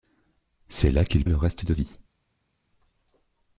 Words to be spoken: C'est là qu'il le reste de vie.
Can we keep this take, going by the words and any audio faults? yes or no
yes